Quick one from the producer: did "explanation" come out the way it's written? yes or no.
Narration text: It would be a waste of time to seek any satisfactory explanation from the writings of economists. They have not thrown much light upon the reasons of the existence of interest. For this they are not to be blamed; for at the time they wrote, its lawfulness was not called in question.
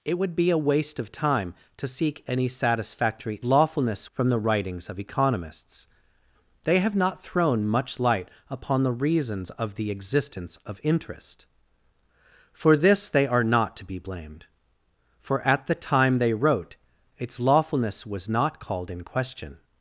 no